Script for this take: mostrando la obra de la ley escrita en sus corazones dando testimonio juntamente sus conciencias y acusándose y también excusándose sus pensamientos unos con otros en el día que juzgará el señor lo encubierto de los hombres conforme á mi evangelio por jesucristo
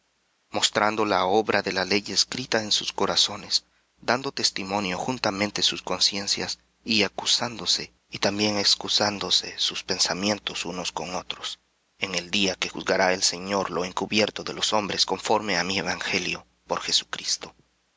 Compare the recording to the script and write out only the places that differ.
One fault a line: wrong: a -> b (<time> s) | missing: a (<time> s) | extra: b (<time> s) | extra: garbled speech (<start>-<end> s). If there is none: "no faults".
no faults